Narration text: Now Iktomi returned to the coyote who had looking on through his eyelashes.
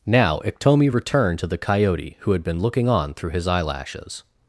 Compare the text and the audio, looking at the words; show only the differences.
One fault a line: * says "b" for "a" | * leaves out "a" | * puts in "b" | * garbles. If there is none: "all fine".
* puts in "been"